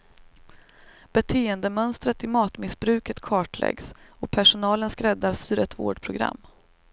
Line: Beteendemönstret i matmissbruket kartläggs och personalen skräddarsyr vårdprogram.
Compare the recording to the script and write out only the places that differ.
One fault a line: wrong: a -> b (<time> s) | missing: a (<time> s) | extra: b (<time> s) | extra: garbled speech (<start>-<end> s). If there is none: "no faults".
extra: ett (5.6 s)